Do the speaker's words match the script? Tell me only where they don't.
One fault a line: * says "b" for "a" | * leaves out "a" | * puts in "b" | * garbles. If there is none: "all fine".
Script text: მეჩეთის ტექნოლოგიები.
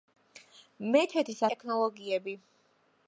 all fine